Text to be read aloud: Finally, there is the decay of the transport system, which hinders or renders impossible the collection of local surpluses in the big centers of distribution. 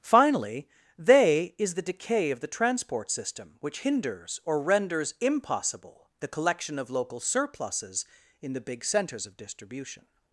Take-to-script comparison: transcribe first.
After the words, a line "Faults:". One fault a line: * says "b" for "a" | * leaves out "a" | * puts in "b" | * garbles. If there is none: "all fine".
Finally, they is the decay of the transport system, which hinders or renders impossible the collection of local surpluses in the big centers of distribution.
Faults:
* says "they" for "there"